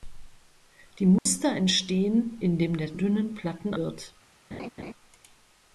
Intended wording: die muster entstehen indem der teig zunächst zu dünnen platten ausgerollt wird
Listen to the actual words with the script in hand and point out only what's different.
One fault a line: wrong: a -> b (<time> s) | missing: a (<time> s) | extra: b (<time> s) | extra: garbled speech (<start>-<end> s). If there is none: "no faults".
missing: teig zunächst zu (3.0 s)
missing: ausgerollt (3.7 s)